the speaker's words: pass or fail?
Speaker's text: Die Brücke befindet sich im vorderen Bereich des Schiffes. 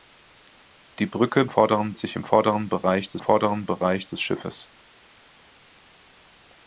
fail